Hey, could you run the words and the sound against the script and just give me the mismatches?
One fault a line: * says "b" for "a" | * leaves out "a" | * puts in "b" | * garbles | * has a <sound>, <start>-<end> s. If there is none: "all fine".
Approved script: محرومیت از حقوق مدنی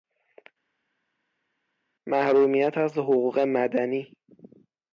all fine